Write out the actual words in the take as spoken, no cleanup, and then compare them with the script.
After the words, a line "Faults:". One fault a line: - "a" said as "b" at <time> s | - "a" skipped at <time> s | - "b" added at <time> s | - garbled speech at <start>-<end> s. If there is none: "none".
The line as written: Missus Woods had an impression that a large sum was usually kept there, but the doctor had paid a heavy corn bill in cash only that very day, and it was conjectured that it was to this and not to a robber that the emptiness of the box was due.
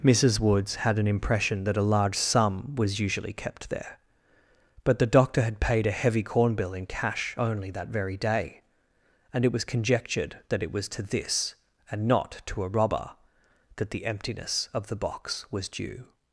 Missus Woods had an impression that a large sum was usually kept there, but the doctor had paid a heavy corn bill in cash only that very day, and it was conjectured that it was to this and not to a robber that the emptiness of the box was due.
Faults:
none